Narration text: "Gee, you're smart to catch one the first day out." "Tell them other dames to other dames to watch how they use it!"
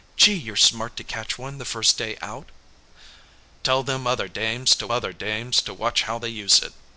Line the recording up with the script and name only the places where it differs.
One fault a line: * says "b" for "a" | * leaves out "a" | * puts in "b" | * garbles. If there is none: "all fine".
all fine